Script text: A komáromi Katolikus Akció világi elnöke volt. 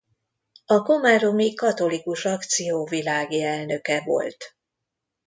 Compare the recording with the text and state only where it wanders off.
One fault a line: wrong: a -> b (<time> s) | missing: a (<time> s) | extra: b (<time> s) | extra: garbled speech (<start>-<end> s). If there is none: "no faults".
no faults